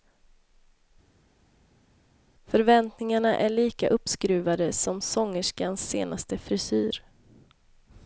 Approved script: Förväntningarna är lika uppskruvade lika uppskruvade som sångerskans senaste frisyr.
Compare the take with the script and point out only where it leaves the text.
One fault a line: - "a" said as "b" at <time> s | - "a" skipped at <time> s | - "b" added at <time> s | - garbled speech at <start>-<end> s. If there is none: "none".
- "lika uppskruvade" skipped at 4.7 s